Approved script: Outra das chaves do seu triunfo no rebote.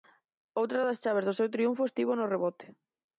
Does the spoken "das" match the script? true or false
true